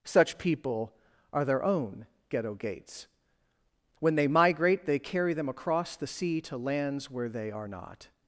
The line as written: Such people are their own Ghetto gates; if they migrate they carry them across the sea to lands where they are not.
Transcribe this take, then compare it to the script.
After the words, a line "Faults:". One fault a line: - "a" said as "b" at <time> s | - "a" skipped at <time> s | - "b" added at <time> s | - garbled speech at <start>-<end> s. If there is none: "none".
Such people are their own Ghetto gates; when they migrate they carry them across the sea to lands where they are not.
Faults:
- "if" said as "when" at 4.0 s